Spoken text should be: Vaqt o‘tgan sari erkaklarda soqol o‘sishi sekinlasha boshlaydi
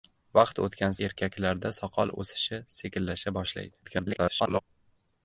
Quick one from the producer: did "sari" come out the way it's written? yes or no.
no